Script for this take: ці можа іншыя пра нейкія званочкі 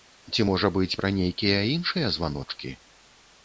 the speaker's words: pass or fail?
fail